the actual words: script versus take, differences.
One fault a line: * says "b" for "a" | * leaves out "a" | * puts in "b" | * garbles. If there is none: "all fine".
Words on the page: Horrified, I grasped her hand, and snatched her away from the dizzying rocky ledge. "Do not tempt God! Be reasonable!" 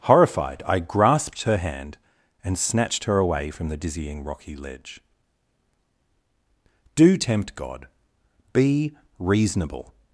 * leaves out "not"